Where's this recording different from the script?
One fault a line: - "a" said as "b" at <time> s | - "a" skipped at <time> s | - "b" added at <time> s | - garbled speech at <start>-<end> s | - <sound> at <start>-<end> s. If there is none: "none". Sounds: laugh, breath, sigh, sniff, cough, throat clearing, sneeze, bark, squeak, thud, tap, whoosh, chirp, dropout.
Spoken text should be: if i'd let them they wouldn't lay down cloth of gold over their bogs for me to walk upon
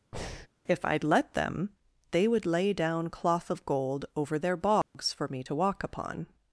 - breath at 0.1-0.5 s
- "wouldn't" said as "would" at 2.3 s
- dropout at 4.8-4.9 s